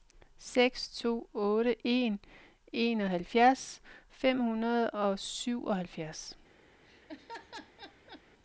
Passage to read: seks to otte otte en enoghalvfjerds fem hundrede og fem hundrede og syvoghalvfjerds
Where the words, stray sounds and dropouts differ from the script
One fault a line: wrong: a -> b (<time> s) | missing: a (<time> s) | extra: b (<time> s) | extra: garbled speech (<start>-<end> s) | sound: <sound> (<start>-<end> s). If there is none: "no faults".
missing: otte (1.8 s)
missing: fem hundrede og (5.2 s)
sound: laugh (6.8-8.2 s)